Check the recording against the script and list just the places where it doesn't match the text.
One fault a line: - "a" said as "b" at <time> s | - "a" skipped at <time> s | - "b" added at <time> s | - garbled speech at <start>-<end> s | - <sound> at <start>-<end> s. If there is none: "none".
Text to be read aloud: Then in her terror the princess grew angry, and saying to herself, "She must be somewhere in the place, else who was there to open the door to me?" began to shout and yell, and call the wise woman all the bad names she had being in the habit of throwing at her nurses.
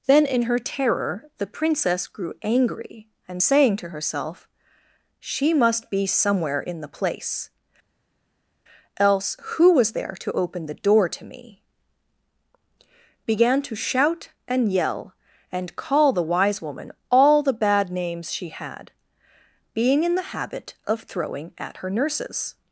none